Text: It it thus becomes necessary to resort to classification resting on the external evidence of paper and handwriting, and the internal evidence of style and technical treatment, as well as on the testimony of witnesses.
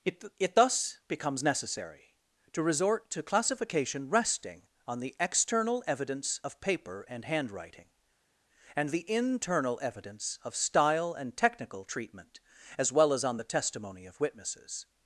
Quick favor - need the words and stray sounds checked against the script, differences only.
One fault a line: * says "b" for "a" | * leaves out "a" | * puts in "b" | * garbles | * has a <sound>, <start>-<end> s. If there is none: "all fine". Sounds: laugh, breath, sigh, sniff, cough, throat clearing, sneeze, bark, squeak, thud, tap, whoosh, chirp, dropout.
all fine